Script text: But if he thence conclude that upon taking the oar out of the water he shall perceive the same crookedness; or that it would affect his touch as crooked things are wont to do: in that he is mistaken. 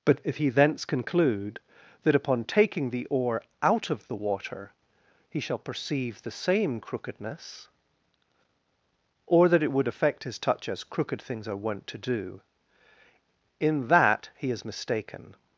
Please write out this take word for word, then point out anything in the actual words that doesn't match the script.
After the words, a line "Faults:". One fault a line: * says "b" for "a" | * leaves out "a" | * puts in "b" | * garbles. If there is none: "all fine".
But if he thence conclude that upon taking the oar out of the water he shall perceive the same crookedness; or that it would affect his touch as crooked things are wont to do: in that he is mistaken.
Faults:
all fine